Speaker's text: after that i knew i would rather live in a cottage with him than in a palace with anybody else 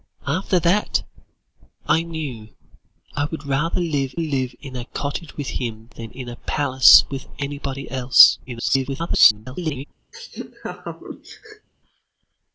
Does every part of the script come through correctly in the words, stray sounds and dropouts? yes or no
no